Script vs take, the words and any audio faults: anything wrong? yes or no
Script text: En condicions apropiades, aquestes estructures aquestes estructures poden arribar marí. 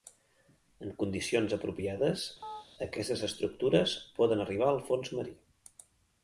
yes